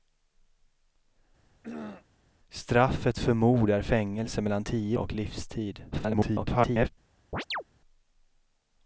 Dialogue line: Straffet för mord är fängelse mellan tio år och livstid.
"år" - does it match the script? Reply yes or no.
no